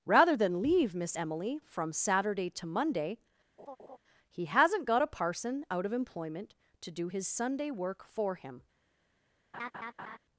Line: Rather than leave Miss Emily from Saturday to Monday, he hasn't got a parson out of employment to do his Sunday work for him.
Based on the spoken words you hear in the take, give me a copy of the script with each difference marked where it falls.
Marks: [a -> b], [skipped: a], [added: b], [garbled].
Rather than leave Miss Emily from Saturday to Monday, he hasn't got a parson out of employment to do his Sunday work for him.